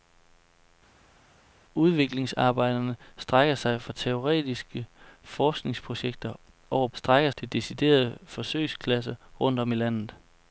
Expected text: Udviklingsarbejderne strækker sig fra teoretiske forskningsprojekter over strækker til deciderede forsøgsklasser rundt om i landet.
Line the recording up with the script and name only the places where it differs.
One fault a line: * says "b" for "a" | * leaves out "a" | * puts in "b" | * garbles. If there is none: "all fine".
all fine